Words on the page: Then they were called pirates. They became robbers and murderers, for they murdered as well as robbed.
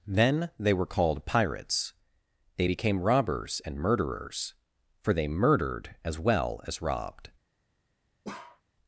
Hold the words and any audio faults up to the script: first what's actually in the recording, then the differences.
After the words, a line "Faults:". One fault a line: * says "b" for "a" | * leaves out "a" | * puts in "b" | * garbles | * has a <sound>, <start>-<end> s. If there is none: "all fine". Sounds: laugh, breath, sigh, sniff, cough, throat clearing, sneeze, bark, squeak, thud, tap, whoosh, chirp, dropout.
Then they were called pirates. They became robbers and murderers, for they murdered as well as robbed.
Faults:
* has a bark, 8.2-8.6 s